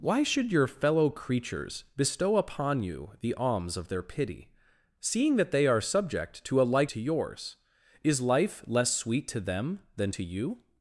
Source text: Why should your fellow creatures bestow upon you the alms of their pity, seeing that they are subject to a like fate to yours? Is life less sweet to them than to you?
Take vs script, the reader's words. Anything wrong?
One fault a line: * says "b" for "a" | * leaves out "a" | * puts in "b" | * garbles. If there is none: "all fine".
* leaves out "fate"